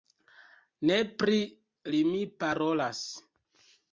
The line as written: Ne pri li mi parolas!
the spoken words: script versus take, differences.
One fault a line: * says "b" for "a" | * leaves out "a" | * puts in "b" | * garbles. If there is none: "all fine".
all fine